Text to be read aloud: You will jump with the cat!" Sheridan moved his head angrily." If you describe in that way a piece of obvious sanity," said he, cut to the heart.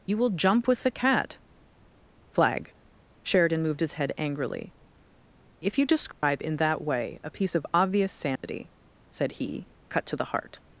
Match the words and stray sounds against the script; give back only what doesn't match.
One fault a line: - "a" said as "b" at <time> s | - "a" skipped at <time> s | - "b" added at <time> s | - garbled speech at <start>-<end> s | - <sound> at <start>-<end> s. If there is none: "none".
- "flag" added at 2.3 s
- dropout at 6.1-6.2 s
- dropout at 8.4-8.4 s